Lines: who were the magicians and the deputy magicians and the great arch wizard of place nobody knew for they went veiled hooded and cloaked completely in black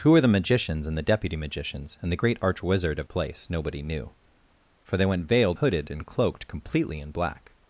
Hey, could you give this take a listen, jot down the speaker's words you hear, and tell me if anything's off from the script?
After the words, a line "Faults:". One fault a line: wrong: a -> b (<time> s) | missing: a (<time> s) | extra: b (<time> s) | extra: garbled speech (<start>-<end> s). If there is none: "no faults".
who were the magicians and the deputy magicians and the great arch wizard of place nobody knew for they went veiled hooded and cloaked completely in black
Faults:
no faults